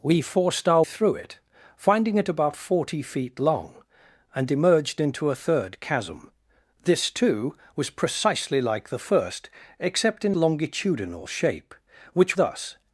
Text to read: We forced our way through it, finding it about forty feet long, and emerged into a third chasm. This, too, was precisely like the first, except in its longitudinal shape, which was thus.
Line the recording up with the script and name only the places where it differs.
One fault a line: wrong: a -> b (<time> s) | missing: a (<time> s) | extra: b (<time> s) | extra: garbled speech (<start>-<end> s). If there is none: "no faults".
missing: way (0.8 s)
missing: its (10.4 s)
missing: was (12.3 s)